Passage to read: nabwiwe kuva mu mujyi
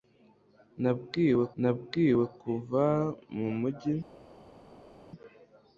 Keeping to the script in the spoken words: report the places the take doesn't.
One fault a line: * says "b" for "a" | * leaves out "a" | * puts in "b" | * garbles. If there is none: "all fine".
* puts in "nabwiwe"